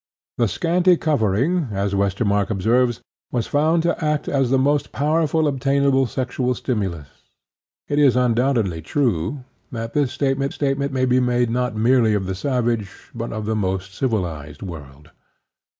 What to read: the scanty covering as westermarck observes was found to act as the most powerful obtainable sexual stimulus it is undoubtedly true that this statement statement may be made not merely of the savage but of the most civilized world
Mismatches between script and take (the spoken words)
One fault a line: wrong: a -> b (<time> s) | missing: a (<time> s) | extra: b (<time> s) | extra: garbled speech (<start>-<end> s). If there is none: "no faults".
no faults